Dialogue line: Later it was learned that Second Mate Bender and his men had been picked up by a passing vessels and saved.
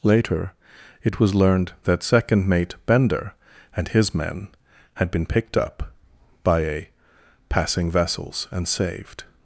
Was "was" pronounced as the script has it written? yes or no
yes